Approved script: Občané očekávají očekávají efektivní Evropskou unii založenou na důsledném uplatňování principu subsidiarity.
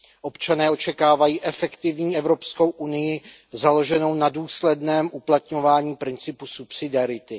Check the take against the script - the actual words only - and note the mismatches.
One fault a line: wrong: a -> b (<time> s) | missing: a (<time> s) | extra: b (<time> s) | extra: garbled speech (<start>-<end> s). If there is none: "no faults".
missing: očekávají (1.4 s)